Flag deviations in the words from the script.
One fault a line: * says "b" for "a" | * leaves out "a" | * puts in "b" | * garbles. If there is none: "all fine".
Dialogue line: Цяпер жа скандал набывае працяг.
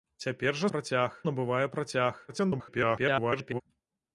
* says "працяг" for "скандал"
* garbles